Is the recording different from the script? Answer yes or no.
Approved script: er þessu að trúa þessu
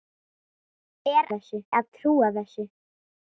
no